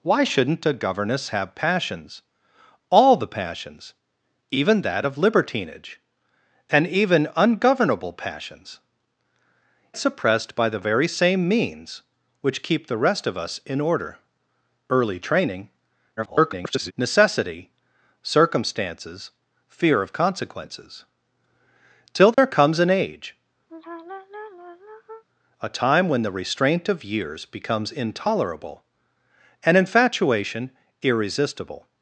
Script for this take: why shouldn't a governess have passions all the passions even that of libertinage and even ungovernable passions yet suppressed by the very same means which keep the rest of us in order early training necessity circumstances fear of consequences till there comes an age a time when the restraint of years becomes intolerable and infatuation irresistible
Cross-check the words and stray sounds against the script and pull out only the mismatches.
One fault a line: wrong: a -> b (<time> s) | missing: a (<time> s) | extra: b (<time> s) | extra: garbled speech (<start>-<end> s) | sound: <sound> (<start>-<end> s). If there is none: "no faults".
missing: yet (8.8 s)
extra: garbled speech (16.2-16.9 s)
sound: dropout (22.3-22.4 s)
sound: sigh (23.7-25.2 s)